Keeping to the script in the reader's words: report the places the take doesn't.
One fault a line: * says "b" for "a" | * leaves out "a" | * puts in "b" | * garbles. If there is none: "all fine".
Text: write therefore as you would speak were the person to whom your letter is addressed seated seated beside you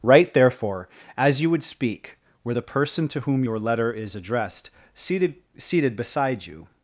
all fine